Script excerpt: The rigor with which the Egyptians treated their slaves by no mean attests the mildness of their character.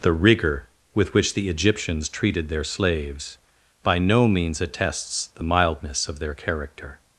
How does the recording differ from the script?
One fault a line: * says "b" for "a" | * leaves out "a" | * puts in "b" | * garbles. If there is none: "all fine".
* says "means" for "mean"